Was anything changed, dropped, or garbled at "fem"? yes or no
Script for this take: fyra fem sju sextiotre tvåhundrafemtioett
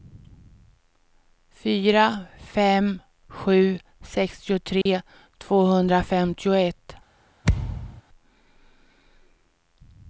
no